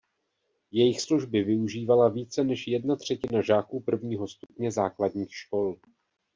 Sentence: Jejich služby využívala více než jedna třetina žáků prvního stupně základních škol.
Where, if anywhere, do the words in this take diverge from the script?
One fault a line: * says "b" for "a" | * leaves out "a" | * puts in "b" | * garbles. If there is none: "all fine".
all fine